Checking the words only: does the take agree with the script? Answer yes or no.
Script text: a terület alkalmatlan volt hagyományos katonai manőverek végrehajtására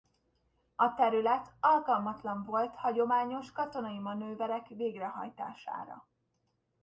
yes